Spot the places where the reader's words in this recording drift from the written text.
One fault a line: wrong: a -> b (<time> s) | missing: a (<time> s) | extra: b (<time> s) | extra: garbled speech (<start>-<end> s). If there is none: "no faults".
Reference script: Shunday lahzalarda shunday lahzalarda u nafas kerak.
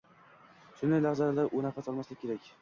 missing: shunday lahzalarda (1.5 s)
extra: olmaslik (1.9 s)